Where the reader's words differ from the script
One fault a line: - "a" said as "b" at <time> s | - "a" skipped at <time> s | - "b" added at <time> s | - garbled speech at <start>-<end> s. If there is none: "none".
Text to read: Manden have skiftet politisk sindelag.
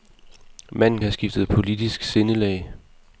none